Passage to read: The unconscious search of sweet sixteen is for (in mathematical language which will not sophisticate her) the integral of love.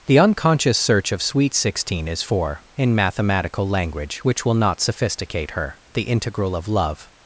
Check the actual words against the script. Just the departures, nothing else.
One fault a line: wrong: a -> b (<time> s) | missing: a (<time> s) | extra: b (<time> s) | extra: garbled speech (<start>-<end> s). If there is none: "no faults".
no faults